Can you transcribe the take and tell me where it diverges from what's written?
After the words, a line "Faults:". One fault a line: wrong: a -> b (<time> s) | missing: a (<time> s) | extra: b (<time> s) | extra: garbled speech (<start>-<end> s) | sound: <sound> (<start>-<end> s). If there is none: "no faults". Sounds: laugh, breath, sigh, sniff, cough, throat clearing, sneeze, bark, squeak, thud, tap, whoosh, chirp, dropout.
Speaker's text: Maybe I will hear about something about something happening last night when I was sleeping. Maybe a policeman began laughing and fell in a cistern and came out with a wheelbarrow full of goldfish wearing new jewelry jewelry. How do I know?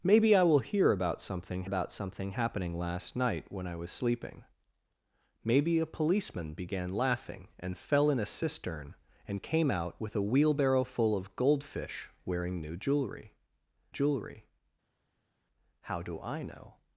Maybe I will hear about something about something happening last night when I was sleeping. Maybe a policeman began laughing and fell in a cistern and came out with a wheelbarrow full of goldfish wearing new jewelry jewelry. How do I know?
Faults:
no faults